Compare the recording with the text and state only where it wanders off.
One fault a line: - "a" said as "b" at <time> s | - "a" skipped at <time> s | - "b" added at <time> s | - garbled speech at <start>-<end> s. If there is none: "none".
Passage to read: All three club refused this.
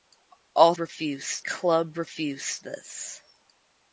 - "three" said as "refused" at 0.8 s